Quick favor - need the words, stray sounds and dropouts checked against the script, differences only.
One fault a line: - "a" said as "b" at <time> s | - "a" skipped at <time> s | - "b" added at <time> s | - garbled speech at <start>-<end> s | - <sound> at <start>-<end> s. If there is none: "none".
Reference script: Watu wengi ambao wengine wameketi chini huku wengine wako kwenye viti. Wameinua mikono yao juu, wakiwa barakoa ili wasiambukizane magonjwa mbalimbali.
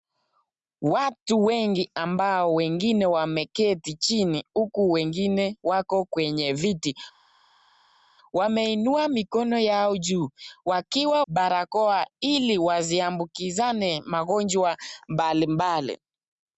none